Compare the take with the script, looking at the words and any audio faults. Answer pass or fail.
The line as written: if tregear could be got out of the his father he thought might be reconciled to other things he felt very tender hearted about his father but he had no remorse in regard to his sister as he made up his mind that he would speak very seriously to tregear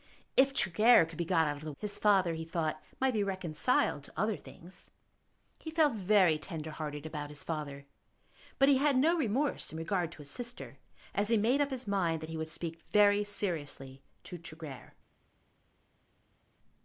pass